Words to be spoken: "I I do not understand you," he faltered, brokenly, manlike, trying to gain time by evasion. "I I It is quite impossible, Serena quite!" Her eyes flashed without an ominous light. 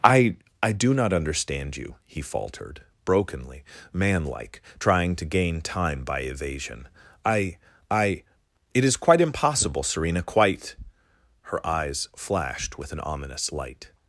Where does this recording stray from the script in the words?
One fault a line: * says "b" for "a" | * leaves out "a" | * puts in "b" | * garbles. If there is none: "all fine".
* says "with" for "without"